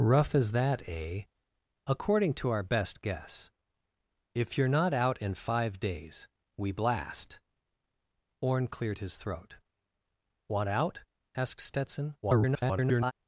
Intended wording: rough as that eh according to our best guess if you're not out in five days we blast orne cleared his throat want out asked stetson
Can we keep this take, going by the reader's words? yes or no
no